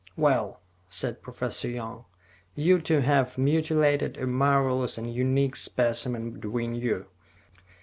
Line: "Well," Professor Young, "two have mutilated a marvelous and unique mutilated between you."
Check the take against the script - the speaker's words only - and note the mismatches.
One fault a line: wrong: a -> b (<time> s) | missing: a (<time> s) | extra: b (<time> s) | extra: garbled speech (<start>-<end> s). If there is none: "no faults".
extra: said (0.9 s)
extra: you (2.5 s)
wrong: mutilated -> specimen (5.5 s)